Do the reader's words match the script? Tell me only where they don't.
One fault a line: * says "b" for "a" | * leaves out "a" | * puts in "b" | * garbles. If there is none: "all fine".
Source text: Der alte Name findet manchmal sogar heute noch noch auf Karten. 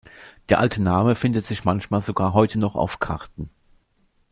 * puts in "sich"
* leaves out "noch"